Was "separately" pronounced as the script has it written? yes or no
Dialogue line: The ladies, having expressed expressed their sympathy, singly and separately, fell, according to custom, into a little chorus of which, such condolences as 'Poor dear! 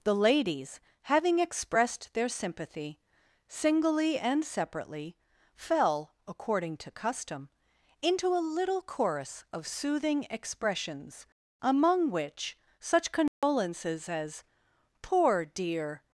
yes